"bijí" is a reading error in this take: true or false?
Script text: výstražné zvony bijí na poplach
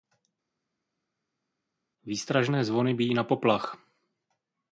false